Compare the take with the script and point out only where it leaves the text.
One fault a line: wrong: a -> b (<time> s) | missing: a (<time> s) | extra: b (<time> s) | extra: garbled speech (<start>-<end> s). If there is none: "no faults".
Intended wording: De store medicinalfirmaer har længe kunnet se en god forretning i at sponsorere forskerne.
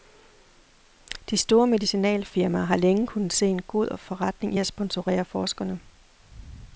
no faults